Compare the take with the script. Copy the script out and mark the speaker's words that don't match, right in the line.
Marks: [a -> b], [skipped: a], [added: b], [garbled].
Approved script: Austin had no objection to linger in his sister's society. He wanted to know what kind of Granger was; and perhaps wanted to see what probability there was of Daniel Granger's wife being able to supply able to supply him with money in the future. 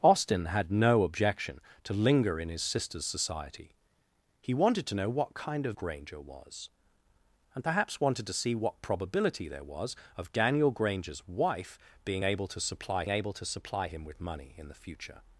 Austin had no objection to linger in his sister's society. He wanted to know what kind of Granger was; and perhaps wanted to see what probability there was of Daniel Granger's wife being able to supply able to supply him with money in the future.